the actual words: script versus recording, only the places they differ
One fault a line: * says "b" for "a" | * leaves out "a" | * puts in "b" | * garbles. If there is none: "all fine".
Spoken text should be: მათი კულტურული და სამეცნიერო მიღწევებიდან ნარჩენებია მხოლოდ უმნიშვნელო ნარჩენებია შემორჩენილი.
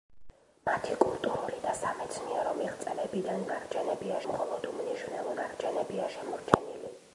all fine